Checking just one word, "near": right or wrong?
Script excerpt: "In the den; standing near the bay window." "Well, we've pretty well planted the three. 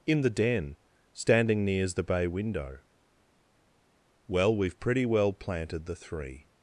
wrong